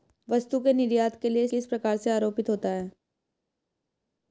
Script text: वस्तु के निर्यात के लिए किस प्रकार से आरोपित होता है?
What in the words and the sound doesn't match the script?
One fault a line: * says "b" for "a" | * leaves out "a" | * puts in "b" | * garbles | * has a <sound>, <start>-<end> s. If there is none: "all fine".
all fine